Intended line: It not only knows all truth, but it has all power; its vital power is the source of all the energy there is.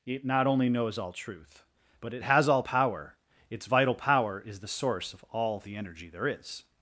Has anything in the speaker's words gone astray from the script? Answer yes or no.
no